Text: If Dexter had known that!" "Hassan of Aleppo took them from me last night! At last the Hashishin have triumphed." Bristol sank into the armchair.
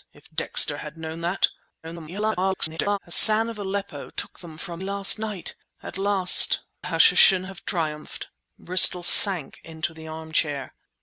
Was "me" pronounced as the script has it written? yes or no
no